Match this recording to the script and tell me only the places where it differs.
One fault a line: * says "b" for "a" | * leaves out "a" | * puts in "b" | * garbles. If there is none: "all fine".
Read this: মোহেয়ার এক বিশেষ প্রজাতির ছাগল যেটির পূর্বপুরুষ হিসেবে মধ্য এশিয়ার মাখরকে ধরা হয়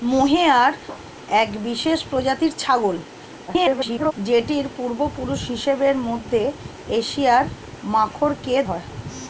* garbles
* leaves out "ধরা"